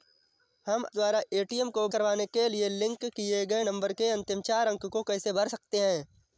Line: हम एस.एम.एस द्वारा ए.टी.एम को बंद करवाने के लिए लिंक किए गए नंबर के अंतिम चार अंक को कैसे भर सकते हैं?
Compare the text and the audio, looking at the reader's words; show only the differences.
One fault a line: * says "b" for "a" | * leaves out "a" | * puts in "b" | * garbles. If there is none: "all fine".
* leaves out "एस.एम.एस"
* leaves out "बंद"